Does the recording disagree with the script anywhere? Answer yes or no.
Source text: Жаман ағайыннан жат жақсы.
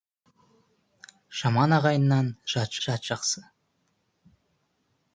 yes